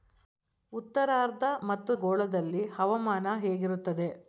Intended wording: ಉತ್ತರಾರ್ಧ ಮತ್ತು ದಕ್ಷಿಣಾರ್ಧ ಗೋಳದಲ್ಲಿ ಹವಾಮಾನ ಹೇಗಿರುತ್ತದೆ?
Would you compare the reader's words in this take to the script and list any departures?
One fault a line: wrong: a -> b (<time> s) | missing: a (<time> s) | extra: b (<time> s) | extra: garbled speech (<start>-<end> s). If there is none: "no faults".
missing: ದಕ್ಷಿಣಾರ್ಧ (1.9 s)